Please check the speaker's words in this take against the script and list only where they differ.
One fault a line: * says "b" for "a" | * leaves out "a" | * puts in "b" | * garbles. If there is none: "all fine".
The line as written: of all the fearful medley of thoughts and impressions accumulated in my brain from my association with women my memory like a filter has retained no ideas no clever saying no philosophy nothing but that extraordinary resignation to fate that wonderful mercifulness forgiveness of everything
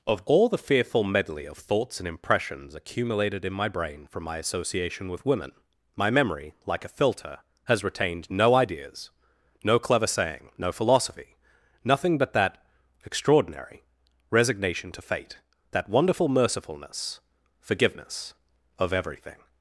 all fine